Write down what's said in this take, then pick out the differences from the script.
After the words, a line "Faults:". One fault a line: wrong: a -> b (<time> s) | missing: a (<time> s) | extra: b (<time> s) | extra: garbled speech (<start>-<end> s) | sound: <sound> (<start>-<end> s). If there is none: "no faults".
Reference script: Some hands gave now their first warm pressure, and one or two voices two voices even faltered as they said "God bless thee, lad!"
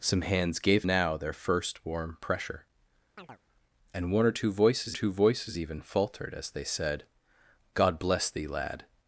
Some hands gave now their first warm pressure, and one or two voices two voices even faltered as they said "God bless thee, lad!"
Faults:
sound: chirp (3.2-3.4 s)